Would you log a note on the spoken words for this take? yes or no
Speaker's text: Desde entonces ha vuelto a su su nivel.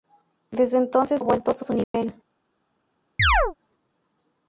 no